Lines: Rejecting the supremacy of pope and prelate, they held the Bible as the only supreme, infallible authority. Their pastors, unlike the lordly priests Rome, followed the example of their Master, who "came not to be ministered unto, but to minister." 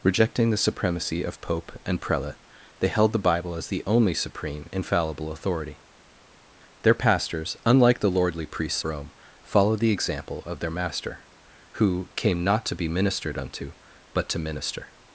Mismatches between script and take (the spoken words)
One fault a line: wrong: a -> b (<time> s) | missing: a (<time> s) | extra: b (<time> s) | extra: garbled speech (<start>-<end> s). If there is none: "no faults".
no faults